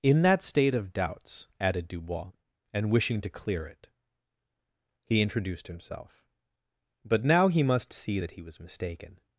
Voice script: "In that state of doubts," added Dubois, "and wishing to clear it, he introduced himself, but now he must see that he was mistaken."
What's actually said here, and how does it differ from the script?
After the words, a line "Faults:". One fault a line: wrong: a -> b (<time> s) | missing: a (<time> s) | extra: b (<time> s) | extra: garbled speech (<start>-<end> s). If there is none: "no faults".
"In that state of doubts," added Dubois, "and wishing to clear it, he introduced himself, but now he must see that he was mistaken."
Faults:
no faults